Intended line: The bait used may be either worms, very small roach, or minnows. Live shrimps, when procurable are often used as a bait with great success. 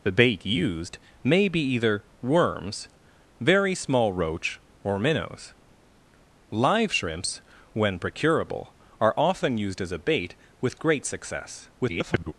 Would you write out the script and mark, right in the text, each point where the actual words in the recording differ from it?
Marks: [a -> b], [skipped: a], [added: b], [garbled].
The bait used may be either worms, very small roach, or minnows. Live shrimps, when procurable are often used as a bait with great success. [garbled]